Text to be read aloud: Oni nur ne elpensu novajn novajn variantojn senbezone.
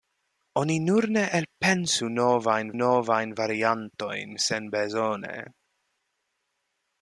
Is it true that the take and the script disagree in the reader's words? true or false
false